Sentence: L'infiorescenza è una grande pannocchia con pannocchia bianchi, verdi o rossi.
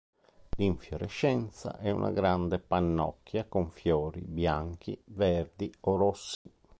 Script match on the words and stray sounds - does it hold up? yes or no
no